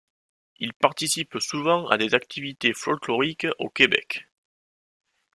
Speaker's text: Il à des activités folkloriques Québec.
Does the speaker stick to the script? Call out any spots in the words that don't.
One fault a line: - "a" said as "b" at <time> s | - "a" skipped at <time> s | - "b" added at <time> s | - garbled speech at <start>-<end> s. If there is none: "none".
- "participe souvent" added at 0.7 s
- "au" added at 3.6 s